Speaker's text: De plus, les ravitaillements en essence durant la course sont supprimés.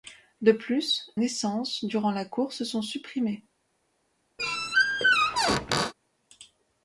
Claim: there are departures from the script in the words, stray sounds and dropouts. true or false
true